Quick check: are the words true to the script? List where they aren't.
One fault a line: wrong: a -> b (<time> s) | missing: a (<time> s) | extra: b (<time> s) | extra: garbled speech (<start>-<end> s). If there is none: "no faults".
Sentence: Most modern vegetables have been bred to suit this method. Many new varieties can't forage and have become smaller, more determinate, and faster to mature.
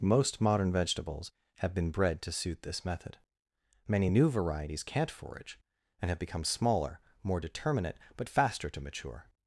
wrong: and -> but (8.2 s)